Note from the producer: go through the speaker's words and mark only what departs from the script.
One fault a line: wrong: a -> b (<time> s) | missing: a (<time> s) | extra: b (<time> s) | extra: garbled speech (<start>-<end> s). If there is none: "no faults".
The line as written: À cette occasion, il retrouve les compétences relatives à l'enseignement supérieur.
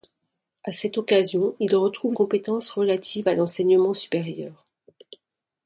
missing: les (2.1 s)